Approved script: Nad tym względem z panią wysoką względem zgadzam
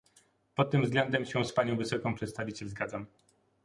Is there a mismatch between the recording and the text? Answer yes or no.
yes